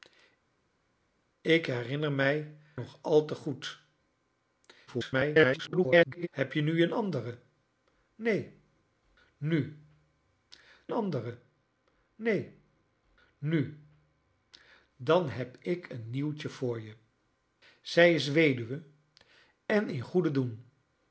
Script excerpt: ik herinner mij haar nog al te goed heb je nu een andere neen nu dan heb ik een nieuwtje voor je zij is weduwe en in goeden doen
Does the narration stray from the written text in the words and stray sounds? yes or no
yes